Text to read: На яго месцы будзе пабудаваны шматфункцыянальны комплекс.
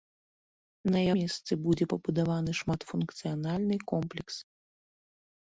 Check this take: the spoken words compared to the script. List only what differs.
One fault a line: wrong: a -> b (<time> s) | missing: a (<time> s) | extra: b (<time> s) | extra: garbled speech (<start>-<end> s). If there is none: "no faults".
missing: яго (1.0 s)